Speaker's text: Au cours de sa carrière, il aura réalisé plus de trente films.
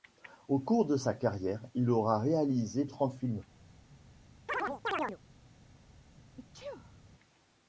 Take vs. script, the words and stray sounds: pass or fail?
fail